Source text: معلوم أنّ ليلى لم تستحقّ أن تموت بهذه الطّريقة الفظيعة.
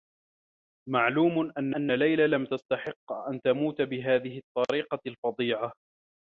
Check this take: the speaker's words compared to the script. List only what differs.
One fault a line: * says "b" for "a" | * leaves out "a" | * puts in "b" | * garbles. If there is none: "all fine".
* puts in "أنّ"